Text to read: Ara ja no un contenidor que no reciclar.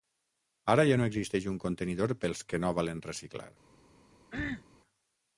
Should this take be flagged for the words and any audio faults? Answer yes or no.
yes